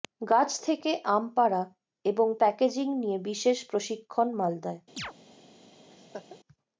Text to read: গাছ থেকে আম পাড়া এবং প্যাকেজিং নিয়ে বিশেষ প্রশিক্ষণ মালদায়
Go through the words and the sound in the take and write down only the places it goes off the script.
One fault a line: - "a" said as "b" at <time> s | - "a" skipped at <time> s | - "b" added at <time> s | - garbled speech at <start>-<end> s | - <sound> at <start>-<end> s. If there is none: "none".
- chirp at 5.0-5.1 s
- laugh at 5.9-6.4 s